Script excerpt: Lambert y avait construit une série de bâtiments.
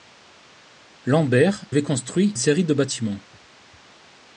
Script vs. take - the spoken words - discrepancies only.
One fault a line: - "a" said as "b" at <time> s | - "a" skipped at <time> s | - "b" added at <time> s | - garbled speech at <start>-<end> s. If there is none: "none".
- "y" skipped at 1.7 s
- "une" skipped at 2.3 s